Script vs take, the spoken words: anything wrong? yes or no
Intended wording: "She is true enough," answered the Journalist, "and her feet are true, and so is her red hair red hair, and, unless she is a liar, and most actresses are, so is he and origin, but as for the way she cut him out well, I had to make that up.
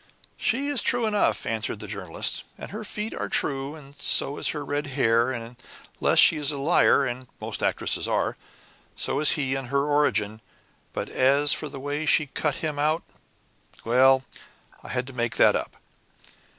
yes